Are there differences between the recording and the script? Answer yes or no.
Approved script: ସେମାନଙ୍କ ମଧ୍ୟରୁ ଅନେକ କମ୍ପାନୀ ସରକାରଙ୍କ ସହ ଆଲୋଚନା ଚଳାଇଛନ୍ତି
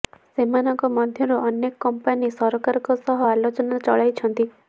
no